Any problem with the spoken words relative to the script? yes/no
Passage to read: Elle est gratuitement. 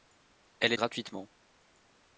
no